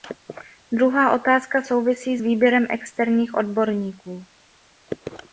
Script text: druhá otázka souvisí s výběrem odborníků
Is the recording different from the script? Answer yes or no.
yes